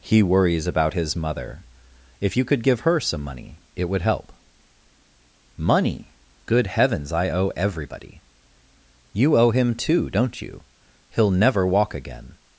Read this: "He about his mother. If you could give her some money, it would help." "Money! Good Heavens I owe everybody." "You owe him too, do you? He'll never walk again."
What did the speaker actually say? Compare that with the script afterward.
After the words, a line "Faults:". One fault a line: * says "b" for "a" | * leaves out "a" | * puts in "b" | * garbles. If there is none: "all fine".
"He worries about his mother. If you could give her some money, it would help." "Money! Good Heavens I owe everybody." "You owe him too, don't you? He'll never walk again."
Faults:
* puts in "worries"
* says "don't" for "do"